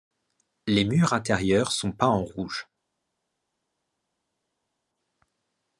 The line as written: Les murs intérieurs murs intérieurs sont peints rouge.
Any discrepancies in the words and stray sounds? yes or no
yes